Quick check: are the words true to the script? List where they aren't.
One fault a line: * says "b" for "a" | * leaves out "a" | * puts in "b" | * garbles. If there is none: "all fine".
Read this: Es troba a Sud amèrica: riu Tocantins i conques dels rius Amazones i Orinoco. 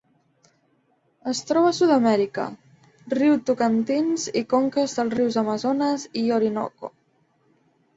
all fine